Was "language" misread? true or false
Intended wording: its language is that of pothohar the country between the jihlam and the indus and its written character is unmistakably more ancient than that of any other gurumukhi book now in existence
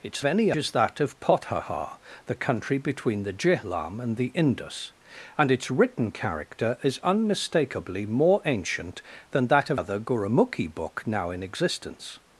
true